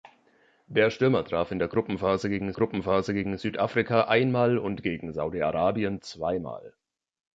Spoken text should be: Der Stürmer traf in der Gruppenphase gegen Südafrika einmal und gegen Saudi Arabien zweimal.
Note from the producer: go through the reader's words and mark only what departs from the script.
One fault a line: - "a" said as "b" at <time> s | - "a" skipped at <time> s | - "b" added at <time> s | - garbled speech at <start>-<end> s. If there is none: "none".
- "Gruppenphase gegen" added at 2.5 s